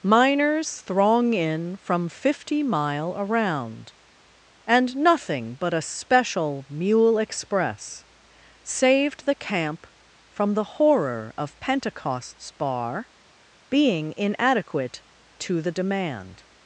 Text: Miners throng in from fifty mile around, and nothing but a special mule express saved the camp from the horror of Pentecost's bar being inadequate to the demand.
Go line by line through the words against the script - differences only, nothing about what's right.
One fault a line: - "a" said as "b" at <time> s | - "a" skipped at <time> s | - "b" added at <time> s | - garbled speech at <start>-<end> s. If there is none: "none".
none